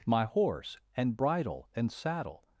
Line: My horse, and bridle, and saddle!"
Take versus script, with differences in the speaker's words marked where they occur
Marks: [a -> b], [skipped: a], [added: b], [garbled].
My horse, and bridle, and saddle!"